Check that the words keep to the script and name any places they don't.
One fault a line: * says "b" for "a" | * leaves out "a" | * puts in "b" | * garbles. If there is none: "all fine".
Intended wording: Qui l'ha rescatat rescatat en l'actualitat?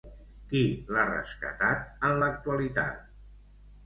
* leaves out "rescatat"